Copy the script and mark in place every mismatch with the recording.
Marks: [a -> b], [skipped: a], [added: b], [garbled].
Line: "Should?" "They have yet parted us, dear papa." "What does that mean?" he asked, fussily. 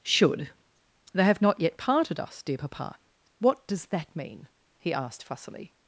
"Should?" "They have [added: not] yet parted us, dear papa." "What does that mean?" he asked, fussily.